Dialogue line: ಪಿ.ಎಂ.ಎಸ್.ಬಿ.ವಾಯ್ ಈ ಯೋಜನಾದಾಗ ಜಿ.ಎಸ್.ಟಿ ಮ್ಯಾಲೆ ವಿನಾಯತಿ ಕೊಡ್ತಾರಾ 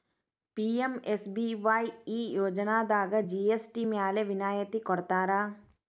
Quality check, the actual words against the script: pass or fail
pass